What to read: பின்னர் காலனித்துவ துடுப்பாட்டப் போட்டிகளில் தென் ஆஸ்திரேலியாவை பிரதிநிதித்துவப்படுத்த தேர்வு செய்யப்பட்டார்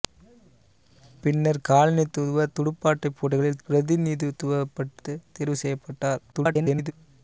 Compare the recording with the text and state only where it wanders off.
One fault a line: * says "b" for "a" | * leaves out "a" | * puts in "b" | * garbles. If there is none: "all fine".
* leaves out "தென் ஆஸ்திரேலியாவை"
* garbles